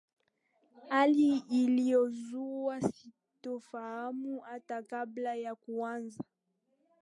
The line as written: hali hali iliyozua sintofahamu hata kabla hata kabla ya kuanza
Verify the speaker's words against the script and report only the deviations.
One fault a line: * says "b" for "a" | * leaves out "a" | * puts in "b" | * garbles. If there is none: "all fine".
* leaves out "hali"
* leaves out "hata kabla"